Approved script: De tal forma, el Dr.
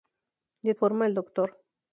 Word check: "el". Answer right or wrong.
right